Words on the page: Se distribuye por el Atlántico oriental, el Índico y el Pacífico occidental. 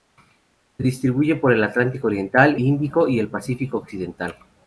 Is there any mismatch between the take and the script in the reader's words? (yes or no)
yes